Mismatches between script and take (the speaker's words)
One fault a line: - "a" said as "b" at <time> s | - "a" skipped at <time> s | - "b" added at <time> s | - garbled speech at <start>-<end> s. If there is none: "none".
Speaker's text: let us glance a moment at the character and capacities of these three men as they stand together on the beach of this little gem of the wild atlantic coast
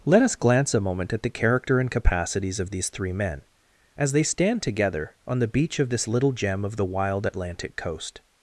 none